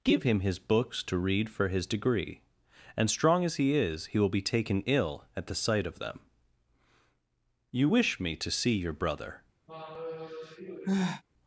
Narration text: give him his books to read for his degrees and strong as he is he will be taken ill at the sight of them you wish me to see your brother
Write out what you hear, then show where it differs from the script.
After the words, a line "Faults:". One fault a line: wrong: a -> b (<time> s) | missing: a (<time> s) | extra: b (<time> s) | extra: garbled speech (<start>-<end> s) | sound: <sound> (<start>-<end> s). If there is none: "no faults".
give him his books to read for his degree and strong as he is he will be taken ill at the sight of them you wish me to see your brother
Faults:
wrong: degrees -> degree (1.9 s)
sound: sigh (9.7-11.2 s)